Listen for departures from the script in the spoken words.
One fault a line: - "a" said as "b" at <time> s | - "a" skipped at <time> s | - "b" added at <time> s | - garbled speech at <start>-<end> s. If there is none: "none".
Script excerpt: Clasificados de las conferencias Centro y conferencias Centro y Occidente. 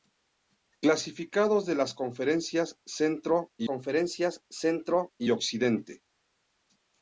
none